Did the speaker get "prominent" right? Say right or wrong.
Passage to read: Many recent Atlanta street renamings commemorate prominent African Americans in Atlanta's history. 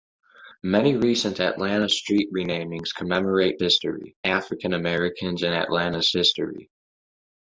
wrong